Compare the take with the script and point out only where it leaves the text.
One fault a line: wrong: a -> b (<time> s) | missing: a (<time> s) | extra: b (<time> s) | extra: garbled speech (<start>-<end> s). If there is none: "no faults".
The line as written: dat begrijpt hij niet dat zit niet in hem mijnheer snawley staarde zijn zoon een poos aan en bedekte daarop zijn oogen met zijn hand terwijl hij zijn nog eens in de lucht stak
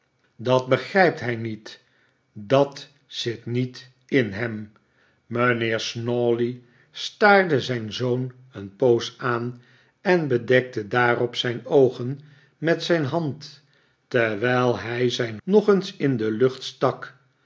no faults